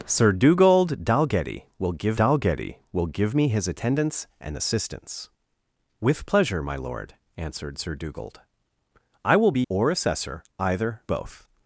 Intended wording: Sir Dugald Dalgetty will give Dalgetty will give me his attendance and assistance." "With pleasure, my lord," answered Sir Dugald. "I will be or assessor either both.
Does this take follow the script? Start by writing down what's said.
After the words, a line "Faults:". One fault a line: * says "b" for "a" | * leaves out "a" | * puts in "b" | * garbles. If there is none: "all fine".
Sir Dugald Dalgetty will give Dalgetty will give me his attendance and assistance." "With pleasure, my lord," answered Sir Dugald. "I will be or assessor either both.
Faults:
all fine